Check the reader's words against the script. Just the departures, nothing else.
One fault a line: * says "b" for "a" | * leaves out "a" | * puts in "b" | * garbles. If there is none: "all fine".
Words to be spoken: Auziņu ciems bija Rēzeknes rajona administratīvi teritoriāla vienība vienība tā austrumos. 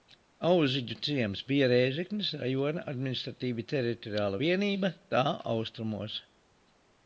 * leaves out "vienība"